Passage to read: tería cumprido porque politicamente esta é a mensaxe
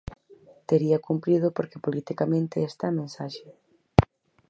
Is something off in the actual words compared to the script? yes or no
no